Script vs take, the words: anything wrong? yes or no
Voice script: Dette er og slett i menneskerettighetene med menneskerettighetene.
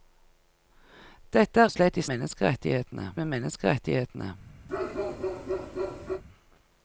no